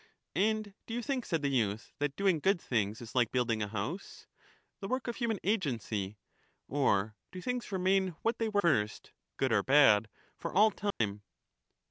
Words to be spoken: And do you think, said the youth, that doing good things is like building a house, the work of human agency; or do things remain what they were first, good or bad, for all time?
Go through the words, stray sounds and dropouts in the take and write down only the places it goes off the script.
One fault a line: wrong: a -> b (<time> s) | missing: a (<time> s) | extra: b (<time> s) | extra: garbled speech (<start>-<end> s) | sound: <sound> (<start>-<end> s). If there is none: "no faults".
sound: dropout (10.9-11.0 s)